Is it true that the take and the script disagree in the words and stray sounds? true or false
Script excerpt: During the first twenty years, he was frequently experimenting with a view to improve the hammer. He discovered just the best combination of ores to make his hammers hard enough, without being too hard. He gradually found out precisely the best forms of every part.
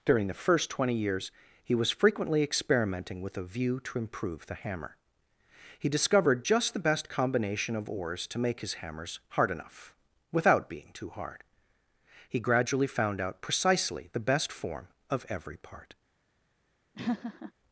true